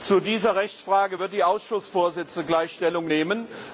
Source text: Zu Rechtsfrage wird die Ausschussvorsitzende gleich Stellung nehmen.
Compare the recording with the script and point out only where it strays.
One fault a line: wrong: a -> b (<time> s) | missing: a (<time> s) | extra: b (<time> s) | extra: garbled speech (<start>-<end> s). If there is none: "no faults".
extra: dieser (0.2 s)